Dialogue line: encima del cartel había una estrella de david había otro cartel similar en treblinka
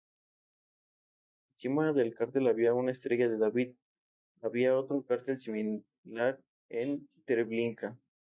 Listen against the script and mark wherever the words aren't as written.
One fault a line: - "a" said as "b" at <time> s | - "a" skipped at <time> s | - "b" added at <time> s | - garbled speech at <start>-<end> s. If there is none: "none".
none